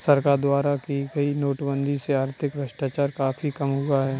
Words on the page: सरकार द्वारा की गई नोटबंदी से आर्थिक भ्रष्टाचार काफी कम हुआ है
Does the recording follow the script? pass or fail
pass